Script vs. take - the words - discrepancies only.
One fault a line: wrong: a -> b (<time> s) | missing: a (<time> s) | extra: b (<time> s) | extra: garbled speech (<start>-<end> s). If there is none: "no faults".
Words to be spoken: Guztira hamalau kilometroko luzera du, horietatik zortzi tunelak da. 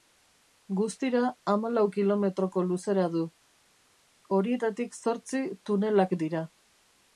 wrong: da -> dira (6.2 s)